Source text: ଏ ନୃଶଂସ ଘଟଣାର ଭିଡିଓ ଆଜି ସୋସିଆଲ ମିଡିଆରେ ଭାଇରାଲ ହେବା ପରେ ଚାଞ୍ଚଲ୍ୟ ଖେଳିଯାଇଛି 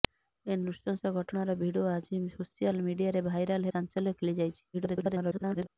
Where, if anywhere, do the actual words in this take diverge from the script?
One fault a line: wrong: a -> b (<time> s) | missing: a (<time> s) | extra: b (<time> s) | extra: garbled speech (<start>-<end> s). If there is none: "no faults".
missing: ହେବା ପରେ (3.7 s)
extra: garbled speech (4.7-5.7 s)